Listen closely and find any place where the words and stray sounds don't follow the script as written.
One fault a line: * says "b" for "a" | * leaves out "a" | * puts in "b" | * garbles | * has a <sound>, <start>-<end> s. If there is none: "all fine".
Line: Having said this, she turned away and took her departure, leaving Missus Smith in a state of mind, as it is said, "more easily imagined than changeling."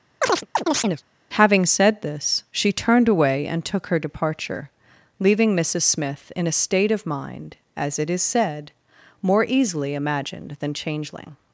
* has a chirp, 0.2-1.0 s